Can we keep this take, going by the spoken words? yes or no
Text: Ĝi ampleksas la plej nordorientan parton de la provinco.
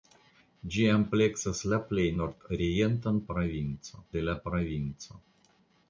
no